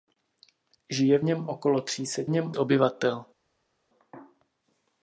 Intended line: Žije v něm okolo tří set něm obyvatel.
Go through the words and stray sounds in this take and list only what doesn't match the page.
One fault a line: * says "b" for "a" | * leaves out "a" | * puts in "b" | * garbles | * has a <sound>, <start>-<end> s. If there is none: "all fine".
all fine